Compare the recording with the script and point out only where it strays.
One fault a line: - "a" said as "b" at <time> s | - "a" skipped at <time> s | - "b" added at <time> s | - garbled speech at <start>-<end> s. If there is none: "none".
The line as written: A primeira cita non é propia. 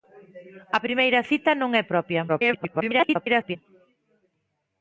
- garbled speech at 2.3-3.6 s